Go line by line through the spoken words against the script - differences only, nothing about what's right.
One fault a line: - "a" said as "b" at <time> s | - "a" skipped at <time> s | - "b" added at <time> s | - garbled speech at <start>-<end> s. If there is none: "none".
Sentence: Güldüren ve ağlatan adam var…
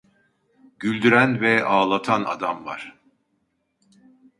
none